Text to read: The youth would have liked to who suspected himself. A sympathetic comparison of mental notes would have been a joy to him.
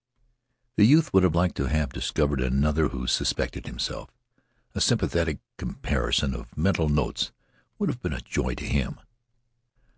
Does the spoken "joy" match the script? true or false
true